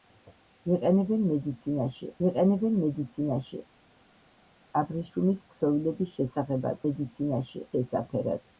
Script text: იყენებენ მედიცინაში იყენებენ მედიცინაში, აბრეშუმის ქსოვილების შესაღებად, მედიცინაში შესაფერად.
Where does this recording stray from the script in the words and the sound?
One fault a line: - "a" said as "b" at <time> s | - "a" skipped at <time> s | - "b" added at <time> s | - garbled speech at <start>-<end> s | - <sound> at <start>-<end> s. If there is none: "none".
none